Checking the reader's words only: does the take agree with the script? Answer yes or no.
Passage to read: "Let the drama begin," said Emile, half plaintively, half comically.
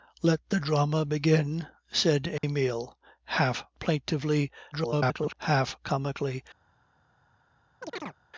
no